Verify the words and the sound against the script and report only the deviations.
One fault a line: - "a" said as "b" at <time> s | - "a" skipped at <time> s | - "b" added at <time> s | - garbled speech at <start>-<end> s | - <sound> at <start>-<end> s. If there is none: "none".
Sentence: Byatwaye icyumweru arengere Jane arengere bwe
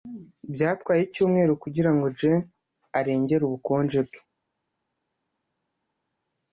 - "arengere" said as "kugirango" at 1.6 s
- "ubukonje" added at 3.5 s